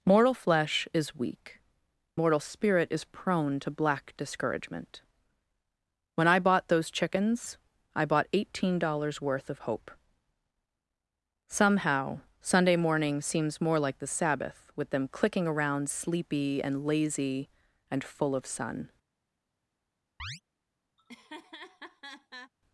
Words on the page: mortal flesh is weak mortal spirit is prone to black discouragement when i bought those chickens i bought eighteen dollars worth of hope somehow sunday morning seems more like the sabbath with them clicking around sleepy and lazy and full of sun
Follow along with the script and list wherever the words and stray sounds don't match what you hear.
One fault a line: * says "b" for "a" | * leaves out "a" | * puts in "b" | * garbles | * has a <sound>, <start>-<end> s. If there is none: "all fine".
* has a chirp, 20.2-20.4 s
* has a laugh, 21.0-22.5 s